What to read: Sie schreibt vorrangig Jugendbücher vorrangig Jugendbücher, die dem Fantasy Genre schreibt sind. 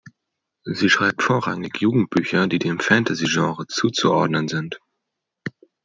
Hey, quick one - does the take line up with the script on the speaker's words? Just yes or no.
no